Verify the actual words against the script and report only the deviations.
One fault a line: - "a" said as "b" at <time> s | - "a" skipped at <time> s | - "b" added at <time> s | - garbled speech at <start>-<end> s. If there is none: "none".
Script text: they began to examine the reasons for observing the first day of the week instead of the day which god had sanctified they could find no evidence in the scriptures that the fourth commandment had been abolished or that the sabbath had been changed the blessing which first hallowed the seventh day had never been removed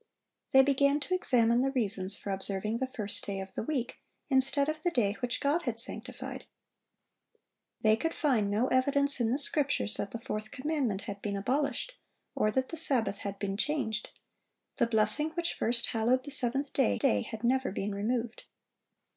- "day" added at 17.0 s